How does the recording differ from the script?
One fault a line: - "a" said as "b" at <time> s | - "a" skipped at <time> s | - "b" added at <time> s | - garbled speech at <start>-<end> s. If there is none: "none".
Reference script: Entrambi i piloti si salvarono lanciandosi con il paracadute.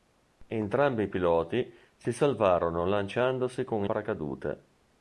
- "il" skipped at 3.9 s